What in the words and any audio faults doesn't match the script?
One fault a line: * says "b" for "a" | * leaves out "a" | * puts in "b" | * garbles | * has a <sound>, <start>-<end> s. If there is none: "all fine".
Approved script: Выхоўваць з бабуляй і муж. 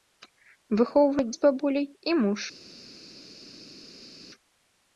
all fine